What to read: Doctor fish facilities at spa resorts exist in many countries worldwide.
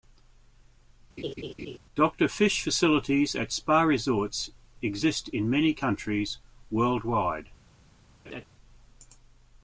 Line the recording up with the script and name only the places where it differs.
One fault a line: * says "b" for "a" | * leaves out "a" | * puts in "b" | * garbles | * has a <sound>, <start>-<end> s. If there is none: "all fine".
* has a laugh, 1.2-1.8 s
* has a laugh, 8.2-8.4 s